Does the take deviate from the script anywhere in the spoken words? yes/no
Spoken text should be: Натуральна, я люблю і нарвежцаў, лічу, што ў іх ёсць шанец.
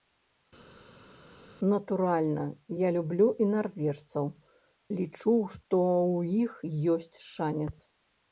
no